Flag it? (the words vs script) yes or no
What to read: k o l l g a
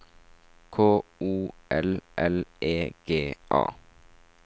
yes